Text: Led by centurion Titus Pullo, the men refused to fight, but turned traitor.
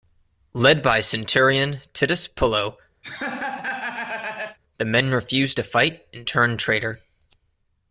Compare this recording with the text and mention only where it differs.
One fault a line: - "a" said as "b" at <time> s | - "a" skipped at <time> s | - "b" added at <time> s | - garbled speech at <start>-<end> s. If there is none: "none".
- "but" said as "and" at 6.1 s